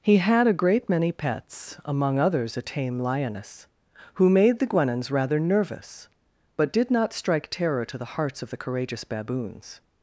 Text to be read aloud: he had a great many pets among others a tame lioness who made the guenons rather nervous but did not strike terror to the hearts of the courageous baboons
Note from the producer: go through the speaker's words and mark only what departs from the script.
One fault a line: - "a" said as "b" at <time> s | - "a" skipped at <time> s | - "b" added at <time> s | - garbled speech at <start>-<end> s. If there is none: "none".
none